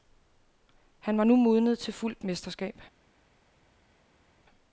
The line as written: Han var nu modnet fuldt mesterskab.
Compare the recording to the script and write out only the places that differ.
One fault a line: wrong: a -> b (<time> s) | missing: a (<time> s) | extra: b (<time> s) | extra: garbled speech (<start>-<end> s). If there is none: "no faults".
extra: til (1.8 s)